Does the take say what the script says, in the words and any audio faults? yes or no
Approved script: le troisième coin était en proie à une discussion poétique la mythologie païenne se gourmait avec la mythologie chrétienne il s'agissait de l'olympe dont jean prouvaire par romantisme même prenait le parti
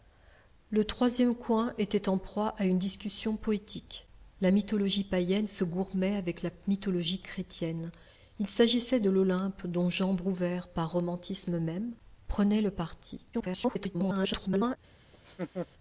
no